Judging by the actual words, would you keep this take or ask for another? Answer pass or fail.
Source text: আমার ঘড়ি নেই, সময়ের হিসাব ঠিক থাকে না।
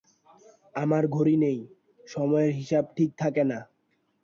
pass